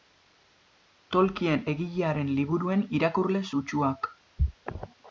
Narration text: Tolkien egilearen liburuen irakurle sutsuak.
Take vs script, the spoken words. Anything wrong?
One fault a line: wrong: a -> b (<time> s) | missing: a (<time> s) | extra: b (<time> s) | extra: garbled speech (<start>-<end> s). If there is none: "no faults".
no faults